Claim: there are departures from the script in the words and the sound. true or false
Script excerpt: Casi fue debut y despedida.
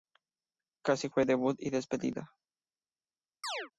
true